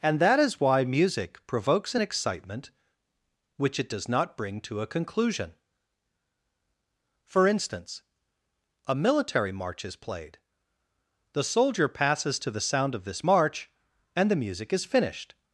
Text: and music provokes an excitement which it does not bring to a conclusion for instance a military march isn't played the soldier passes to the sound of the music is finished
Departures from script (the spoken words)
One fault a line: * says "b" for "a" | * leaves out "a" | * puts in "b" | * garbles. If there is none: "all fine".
* puts in "that is why"
* says "is" for "isn't"
* puts in "this march and"